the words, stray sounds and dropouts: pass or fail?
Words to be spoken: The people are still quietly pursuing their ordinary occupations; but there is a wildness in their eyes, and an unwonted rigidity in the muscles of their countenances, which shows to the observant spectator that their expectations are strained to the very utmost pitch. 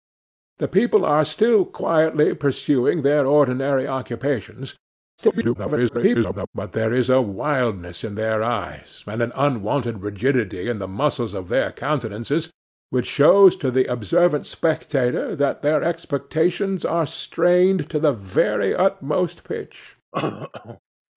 fail